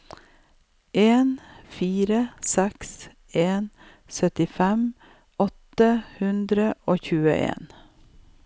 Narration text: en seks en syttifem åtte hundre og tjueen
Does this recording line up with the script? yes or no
no